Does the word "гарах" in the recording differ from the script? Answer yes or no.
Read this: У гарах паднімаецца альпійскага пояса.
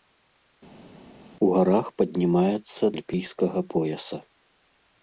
no